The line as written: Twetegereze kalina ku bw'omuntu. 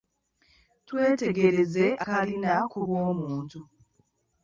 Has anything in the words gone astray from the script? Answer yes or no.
no